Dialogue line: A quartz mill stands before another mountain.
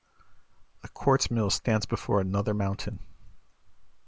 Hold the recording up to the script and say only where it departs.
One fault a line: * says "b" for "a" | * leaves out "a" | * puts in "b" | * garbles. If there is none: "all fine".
all fine